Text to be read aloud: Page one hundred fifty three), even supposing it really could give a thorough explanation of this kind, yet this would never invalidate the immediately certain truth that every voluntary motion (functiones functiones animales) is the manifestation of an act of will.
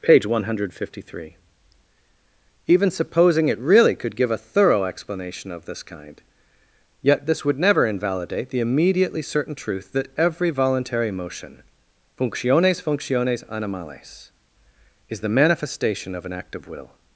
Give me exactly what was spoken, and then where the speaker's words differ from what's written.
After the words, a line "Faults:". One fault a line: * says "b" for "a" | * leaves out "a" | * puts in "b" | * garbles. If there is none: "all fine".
Page one hundred fifty three), even supposing it really could give a thorough explanation of this kind, yet this would never invalidate the immediately certain truth that every voluntary motion (functiones functiones animales) is the manifestation of an act of will.
Faults:
all fine